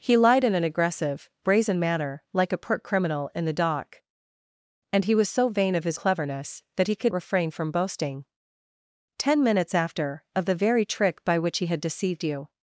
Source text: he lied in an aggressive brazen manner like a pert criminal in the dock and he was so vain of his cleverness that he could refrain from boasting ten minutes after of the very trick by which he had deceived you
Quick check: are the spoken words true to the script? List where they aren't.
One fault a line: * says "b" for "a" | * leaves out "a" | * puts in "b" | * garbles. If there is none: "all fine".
all fine